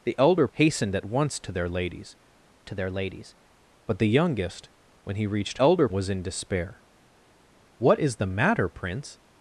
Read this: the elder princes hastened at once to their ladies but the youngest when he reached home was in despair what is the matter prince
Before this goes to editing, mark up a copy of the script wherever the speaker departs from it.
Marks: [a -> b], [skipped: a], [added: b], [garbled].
the elder [skipped: princes] hastened at once to their ladies [added: to their ladies] but the youngest when he reached [home -> elder] was in despair what is the matter prince